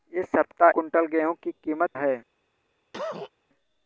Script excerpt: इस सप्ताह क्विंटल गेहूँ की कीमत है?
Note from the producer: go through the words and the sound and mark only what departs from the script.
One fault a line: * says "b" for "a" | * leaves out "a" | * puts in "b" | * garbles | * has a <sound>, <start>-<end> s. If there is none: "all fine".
* has a cough, 2.9-3.3 s